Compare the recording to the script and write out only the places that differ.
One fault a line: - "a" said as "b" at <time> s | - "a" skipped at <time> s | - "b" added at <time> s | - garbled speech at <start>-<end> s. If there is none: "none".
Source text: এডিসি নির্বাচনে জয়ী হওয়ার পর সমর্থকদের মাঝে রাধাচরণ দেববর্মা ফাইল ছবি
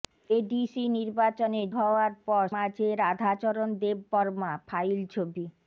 - "জয়ী" skipped at 1.6 s
- "সমর্থকদের" skipped at 2.4 s